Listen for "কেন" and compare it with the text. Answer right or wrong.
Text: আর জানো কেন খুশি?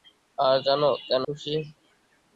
right